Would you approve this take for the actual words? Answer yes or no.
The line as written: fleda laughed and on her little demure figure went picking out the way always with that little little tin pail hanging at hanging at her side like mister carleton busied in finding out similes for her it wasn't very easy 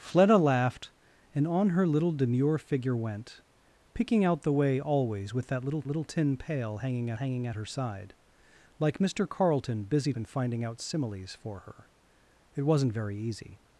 yes